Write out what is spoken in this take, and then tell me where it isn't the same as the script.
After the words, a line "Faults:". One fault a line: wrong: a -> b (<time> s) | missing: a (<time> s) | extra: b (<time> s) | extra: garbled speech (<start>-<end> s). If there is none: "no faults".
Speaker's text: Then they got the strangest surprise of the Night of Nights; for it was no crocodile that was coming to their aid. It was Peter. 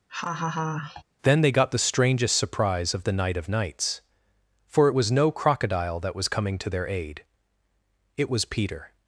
Then they got the strangest surprise of the Night of Nights; for it was no crocodile that was coming to their aid. It was Peter.
Faults:
no faults